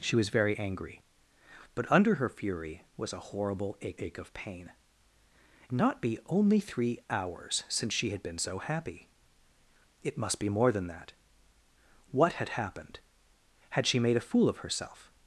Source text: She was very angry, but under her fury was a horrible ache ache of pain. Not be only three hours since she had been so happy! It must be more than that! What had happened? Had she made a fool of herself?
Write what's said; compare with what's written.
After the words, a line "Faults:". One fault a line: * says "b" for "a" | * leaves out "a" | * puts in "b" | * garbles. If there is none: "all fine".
She was very angry, but under her fury was a horrible ache ache of pain. Not be only three hours since she had been so happy! It must be more than that! What had happened? Had she made a fool of herself?
Faults:
all fine